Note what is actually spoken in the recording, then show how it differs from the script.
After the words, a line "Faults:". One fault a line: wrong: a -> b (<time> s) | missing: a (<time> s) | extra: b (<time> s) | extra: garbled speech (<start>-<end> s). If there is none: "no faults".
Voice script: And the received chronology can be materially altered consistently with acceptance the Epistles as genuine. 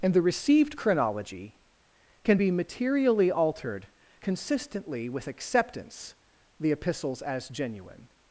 And the received chronology can be materially altered consistently with acceptance the Epistles as genuine.
Faults:
no faults